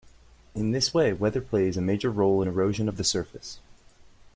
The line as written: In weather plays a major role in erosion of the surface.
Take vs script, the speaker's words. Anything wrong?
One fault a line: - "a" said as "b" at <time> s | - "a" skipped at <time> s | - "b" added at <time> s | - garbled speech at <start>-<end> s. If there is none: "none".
- "this way" added at 0.7 s